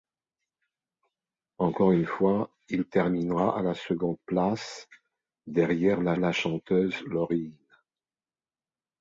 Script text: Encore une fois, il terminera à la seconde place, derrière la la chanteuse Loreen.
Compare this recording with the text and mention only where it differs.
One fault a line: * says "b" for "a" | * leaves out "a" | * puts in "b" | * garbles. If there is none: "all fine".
all fine